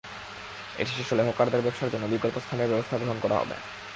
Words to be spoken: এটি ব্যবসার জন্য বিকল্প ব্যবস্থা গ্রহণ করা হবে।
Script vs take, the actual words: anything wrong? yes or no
yes